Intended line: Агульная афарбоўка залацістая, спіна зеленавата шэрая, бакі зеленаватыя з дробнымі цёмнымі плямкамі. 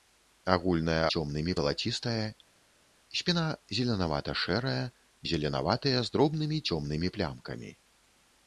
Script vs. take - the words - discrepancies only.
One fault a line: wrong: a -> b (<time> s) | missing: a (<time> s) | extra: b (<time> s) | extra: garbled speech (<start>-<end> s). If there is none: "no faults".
wrong: афарбоўка -> цёмнымі (1.1 s)
missing: бакі (4.8 s)